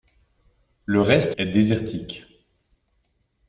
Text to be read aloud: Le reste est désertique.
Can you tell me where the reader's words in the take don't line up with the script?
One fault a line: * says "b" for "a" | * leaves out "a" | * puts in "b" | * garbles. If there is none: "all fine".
all fine